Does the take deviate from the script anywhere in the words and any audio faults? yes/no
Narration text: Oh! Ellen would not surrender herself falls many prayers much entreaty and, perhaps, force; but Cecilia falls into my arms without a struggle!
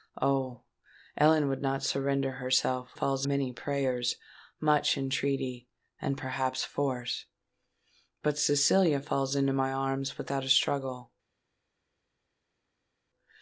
no